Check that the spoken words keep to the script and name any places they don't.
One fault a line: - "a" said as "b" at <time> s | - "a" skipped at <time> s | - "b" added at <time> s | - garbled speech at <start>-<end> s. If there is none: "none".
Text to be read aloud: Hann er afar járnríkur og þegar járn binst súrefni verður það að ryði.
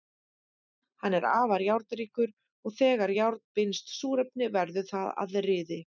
none